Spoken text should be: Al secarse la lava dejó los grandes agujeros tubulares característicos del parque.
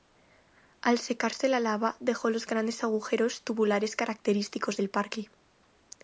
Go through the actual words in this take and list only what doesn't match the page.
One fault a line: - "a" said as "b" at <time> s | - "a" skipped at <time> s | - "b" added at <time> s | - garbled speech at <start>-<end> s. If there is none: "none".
none